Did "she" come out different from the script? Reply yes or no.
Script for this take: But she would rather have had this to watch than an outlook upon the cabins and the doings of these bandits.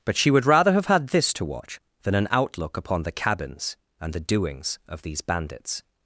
no